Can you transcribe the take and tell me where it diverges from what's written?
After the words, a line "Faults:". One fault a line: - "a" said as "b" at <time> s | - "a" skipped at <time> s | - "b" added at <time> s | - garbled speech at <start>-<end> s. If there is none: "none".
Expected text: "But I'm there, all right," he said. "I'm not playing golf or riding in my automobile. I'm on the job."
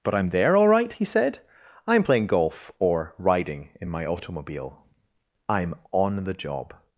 "But I'm there, all right," he said. "I'm playing golf or riding in my automobile. I'm on the job."
Faults:
- "not" skipped at 2.0 s